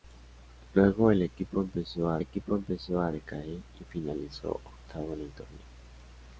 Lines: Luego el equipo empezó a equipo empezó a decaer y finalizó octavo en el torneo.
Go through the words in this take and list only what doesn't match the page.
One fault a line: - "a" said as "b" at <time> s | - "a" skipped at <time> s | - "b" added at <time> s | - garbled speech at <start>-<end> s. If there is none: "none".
none